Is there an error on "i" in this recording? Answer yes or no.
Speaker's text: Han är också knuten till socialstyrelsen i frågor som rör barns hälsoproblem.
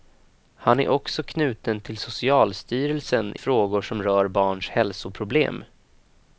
yes